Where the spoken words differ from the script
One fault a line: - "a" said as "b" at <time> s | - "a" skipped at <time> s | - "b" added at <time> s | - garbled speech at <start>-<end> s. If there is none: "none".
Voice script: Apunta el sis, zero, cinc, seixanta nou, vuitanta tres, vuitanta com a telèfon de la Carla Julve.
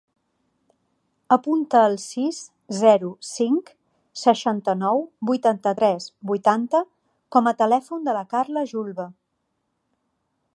none